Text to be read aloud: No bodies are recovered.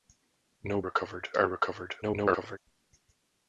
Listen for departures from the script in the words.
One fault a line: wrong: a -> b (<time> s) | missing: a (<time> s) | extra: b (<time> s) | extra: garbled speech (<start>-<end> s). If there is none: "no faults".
wrong: bodies -> recovered (0.8 s)
extra: garbled speech (2.0-2.6 s)